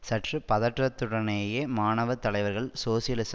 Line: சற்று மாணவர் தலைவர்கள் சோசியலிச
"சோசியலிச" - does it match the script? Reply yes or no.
yes